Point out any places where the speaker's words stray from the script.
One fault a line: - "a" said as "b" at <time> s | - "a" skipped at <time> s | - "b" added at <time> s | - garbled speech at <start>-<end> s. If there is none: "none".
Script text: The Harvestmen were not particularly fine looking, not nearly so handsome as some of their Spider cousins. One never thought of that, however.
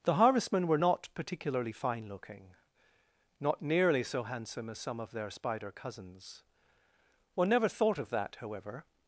none